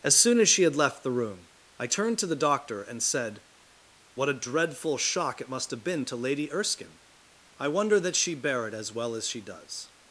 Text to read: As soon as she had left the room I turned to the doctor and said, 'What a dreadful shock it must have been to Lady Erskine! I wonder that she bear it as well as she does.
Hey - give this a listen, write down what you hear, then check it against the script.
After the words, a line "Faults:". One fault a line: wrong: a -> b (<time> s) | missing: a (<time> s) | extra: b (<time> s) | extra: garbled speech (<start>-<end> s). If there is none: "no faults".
As soon as she had left the room I turned to the doctor and said, 'What a dreadful shock it must have been to Lady Erskine! I wonder that she bear it as well as she does.
Faults:
no faults